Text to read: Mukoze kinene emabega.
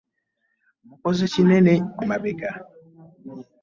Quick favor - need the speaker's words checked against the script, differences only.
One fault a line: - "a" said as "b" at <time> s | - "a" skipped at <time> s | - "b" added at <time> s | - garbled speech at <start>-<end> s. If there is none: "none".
none